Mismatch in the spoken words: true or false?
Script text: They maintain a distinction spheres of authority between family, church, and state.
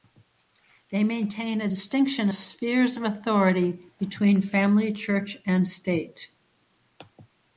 false